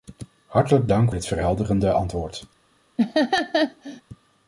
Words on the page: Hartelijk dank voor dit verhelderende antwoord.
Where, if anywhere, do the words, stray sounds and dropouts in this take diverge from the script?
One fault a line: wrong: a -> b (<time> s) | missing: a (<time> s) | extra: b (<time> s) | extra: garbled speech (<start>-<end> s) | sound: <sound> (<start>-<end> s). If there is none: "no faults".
missing: voor (1.1 s)
sound: laugh (3.0-4.0 s)